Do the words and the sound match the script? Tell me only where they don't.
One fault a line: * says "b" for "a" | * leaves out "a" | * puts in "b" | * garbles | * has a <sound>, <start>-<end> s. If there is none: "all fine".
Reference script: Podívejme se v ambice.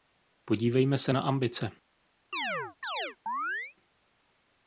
* says "na" for "v"
* has a chirp, 2.3-3.8 s